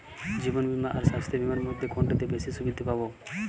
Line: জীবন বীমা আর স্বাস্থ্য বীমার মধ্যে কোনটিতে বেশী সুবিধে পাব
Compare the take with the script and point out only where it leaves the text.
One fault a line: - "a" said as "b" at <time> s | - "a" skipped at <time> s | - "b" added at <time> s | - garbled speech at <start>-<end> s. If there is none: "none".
none